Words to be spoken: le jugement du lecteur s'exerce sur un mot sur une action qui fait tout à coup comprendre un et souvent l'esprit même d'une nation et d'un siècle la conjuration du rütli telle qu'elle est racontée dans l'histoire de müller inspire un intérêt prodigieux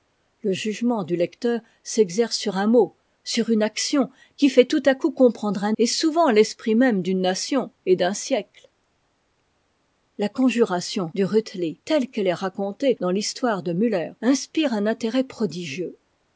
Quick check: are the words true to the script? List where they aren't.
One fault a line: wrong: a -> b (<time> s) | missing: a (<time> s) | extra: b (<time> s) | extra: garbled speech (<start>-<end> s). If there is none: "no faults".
no faults